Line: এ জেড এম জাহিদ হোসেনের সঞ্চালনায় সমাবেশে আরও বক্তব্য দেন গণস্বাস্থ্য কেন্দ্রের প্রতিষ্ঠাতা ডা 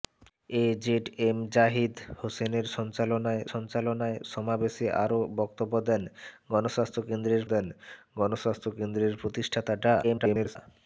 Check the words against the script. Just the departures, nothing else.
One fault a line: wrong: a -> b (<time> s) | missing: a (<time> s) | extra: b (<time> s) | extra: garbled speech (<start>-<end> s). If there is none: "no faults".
extra: সঞ্চালনায় (3.5 s)
extra: দেন গণস্বাস্থ্য কেন্দ্রের (7.5 s)
extra: garbled speech (10.0-10.6 s)